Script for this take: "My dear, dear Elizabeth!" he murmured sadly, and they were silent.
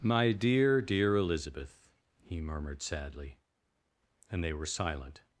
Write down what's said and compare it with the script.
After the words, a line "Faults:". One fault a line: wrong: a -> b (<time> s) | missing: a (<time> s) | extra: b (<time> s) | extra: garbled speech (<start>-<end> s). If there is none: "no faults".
"My dear, dear Elizabeth!" he murmured sadly, and they were silent.
Faults:
no faults